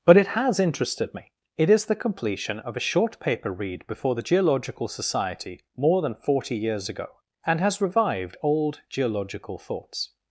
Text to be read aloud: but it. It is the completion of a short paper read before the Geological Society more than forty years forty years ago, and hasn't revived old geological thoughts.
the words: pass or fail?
fail